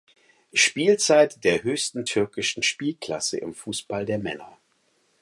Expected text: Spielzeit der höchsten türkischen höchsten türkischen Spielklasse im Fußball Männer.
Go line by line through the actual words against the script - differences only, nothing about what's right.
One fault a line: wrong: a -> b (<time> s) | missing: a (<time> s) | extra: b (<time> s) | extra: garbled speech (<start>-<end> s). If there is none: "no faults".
missing: höchsten türkischen (2.6 s)
extra: der (4.1 s)